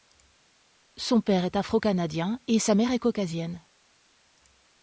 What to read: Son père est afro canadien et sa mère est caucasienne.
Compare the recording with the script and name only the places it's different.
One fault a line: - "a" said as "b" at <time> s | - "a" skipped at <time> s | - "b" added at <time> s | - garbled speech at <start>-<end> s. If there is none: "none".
none